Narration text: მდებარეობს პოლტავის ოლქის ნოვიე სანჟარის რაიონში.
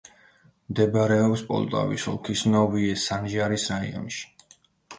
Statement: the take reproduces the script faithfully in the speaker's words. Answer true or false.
true